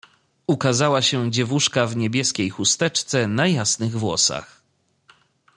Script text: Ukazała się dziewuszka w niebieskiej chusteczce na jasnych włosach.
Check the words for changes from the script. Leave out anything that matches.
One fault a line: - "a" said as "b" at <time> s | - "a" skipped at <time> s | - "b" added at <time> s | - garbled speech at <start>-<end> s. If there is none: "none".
none